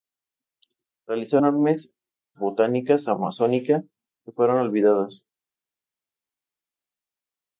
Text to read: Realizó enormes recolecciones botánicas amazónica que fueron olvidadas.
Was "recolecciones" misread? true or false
true